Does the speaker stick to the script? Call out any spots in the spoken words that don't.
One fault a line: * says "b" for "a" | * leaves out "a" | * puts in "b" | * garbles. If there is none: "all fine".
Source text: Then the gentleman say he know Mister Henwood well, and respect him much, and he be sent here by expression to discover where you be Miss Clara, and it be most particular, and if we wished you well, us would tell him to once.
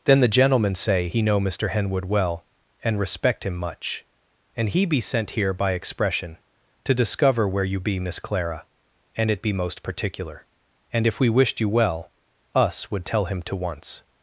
all fine